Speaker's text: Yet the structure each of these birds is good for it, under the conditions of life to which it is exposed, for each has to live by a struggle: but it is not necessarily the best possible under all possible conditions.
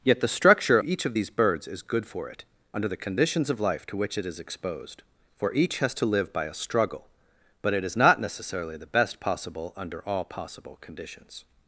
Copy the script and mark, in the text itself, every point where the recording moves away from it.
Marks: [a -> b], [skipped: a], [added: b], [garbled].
Yet the structure each of these birds is good for it, under the conditions of life to which it is exposed, for each has to live by a struggle: but it is not necessarily the best possible under all possible conditions.